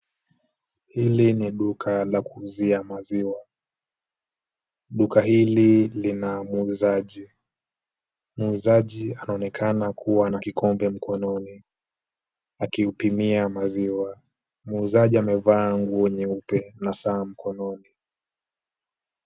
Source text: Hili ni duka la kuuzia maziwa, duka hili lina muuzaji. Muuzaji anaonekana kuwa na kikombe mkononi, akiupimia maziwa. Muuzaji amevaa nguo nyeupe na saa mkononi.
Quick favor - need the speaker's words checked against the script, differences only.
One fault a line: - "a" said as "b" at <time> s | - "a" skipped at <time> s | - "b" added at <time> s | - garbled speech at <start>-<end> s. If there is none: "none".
none